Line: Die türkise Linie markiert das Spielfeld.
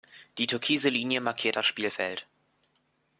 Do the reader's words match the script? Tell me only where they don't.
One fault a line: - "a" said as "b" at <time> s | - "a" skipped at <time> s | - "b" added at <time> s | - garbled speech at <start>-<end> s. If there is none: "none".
none